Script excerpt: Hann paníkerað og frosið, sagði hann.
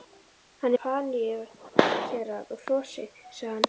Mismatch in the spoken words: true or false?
false